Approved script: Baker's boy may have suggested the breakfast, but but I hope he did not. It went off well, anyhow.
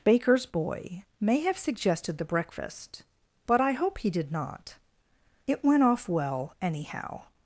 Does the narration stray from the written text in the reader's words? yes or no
yes